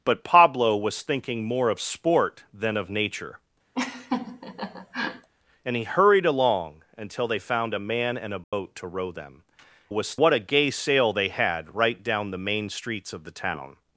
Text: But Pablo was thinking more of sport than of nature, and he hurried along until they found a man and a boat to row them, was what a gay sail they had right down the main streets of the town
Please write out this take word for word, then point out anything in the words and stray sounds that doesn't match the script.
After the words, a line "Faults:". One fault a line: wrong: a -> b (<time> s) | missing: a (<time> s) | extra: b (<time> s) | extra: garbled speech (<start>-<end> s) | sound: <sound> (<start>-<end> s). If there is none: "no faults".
But Pablo was thinking more of sport than of nature, and he hurried along until they found a man and a boat to row them, was what a gay sail they had right down the main streets of the town
Faults:
sound: laugh (3.7-5.3 s)
sound: dropout (8.4-8.5 s)